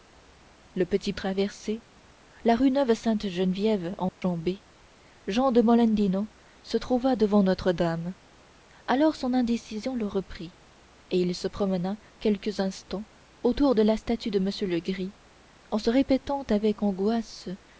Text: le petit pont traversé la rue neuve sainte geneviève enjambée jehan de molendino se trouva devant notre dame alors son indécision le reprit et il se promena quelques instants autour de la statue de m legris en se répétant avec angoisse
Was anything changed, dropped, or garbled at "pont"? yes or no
yes